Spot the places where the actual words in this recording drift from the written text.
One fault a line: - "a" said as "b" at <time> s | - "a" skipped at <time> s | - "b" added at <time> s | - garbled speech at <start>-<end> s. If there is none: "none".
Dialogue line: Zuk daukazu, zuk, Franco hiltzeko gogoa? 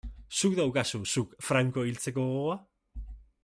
none